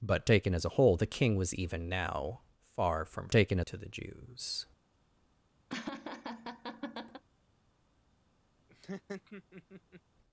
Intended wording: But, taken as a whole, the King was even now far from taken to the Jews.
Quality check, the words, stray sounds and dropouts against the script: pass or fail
fail